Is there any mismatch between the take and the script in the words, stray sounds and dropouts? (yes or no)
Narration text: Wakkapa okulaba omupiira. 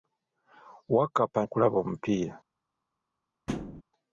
yes